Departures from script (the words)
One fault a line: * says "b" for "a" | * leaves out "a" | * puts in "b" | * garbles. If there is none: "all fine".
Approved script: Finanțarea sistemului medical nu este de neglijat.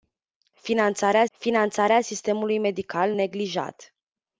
* puts in "finanțarea"
* leaves out "nu este de"